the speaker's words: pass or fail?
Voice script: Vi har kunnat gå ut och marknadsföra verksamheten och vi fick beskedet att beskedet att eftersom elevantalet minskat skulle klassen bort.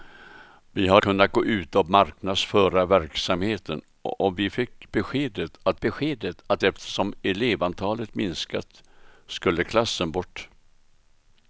pass